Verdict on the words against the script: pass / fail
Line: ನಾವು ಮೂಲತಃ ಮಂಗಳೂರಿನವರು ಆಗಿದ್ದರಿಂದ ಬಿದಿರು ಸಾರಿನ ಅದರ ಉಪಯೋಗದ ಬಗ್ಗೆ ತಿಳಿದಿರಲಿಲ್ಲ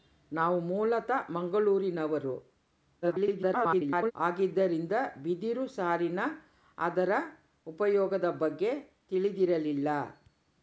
fail